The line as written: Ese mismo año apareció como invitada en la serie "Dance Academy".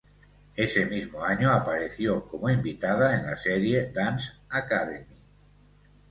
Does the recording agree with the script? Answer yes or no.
yes